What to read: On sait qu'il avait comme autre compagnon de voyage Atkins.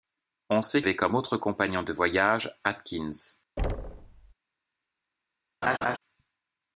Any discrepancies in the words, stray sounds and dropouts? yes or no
yes